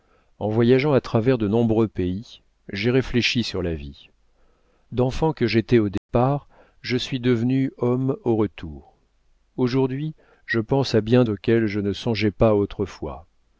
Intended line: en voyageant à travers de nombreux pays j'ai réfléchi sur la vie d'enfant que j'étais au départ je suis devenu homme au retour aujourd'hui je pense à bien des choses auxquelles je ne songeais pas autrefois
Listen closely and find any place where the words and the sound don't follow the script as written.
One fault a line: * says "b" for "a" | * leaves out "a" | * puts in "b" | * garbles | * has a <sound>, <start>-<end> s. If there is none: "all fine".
* has a dropout, 6.0-6.1 s
* leaves out "des choses"